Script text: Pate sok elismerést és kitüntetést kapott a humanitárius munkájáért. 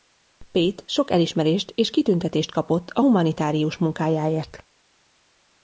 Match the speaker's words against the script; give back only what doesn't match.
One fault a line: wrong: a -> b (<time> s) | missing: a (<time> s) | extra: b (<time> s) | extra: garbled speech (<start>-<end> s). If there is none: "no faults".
no faults